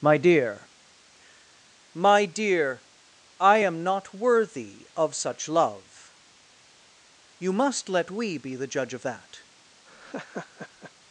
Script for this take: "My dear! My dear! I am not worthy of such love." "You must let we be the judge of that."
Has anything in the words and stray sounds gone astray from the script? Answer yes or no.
yes